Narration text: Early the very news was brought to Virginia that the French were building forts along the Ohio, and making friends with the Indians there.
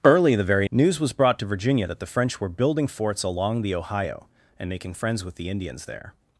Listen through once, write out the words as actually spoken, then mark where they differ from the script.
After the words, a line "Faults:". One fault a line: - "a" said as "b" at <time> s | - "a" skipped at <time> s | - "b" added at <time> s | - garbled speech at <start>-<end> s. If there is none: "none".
Early the very news was brought to Virginia that the French were building forts along the Ohio, and making friends with the Indians there.
Faults:
none